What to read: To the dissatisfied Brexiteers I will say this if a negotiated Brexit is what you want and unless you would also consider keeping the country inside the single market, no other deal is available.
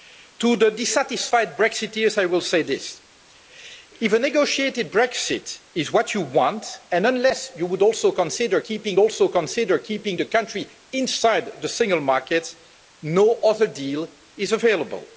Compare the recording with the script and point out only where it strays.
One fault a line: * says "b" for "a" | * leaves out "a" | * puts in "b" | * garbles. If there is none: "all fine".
* puts in "also consider keeping"